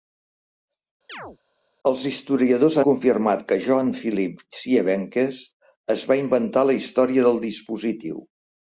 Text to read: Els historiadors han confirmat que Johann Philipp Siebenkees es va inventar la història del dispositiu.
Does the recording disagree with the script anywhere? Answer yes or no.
yes